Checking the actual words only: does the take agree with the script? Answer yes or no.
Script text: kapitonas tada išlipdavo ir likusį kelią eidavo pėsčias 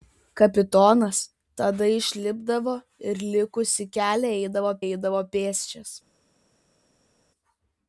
no